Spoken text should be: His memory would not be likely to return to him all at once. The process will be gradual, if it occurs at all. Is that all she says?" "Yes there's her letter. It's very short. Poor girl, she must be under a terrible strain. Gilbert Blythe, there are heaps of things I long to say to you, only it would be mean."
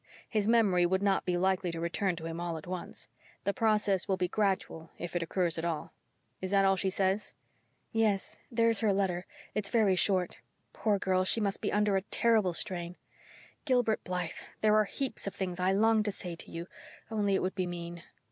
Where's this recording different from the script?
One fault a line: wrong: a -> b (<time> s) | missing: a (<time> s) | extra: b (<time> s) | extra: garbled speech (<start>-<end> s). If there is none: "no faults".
no faults